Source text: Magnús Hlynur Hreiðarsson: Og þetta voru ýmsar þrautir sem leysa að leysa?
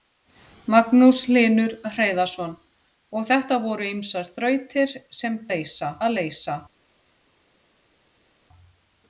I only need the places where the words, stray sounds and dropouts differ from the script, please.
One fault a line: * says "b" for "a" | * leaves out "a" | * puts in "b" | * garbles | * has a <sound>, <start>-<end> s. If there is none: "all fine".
all fine